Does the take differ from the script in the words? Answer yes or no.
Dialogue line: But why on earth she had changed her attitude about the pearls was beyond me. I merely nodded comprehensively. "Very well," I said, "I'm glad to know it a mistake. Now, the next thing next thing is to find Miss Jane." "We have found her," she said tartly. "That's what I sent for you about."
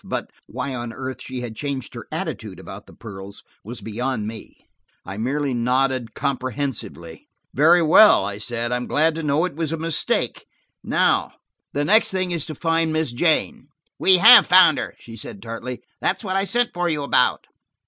yes